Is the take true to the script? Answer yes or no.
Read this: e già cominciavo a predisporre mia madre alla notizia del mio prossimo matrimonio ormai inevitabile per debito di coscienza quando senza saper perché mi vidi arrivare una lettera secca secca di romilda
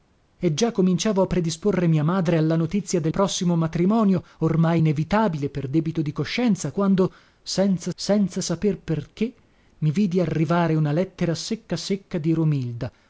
no